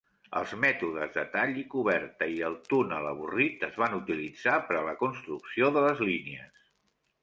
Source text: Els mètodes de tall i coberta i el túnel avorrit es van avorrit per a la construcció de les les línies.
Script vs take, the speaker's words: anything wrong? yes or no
yes